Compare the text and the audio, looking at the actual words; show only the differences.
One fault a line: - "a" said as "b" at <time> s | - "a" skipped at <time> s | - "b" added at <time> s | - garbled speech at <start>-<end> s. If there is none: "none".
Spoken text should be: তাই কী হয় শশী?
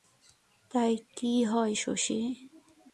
none